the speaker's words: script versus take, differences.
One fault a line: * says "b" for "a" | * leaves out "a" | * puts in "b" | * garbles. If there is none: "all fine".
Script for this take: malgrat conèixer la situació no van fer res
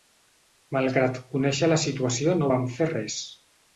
all fine